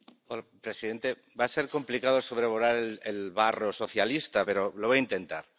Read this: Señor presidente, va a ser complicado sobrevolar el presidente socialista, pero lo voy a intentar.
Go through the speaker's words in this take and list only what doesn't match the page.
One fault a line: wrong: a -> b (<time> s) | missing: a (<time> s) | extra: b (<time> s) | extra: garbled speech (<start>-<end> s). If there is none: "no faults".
wrong: presidente -> barro (3.3 s)